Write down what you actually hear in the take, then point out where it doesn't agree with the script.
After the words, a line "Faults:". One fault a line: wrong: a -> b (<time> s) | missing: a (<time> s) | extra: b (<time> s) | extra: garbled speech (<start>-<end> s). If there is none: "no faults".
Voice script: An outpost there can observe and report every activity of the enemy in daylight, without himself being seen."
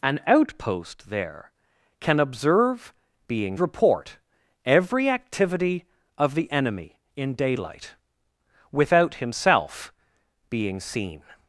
An outpost there can observe being report every activity of the enemy in daylight, without himself being seen."
Faults:
wrong: and -> being (3.3 s)